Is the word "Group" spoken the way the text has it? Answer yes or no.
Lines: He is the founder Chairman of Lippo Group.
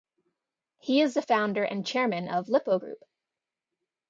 yes